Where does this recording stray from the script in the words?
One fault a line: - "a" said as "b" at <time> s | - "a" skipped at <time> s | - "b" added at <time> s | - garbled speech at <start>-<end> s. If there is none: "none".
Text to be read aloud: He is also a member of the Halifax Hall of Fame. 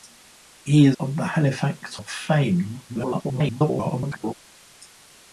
- "also a member" skipped at 1.0 s
- "Hall" skipped at 2.0 s
- garbled speech at 2.9-4.3 s